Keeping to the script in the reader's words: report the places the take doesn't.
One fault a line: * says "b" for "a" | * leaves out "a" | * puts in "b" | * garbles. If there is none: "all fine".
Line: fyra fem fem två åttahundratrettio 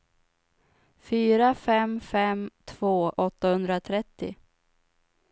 all fine